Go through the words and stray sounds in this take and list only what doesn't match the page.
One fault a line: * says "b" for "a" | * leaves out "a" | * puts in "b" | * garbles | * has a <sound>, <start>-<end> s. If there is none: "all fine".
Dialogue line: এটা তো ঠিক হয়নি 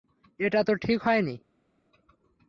all fine